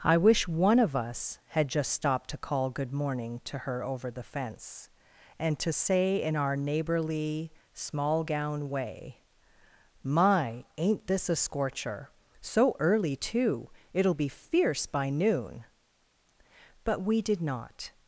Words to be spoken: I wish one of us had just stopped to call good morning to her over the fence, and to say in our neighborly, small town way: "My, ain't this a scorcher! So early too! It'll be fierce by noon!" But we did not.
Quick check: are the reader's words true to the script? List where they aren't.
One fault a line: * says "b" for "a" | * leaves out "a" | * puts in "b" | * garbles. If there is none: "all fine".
* says "gown" for "town"